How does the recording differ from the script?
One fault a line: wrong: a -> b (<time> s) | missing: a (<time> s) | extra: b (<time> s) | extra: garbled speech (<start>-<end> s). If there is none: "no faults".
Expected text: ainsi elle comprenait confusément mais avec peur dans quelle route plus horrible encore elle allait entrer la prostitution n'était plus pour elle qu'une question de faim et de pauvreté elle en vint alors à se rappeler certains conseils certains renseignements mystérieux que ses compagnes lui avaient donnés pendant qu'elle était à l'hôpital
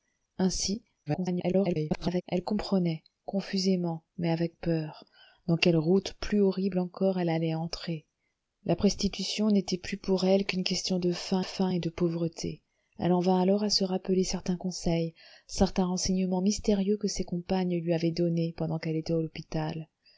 extra: garbled speech (1.1-2.2 s)
extra: faim (11.4 s)